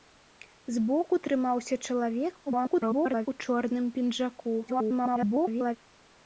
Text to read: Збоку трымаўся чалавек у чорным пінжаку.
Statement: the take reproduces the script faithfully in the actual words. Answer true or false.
false